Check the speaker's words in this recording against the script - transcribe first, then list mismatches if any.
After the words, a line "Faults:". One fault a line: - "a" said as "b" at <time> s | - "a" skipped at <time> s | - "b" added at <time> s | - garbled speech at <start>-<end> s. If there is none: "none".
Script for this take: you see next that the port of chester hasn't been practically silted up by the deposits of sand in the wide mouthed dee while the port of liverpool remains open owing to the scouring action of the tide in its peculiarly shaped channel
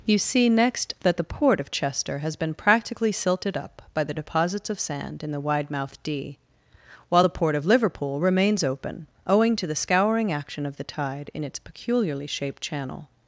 you see next that the port of chester has been practically silted up by the deposits of sand in the wide mouthed dee while the port of liverpool remains open owing to the scouring action of the tide in its peculiarly shaped channel
Faults:
- "hasn't" said as "has" at 2.2 s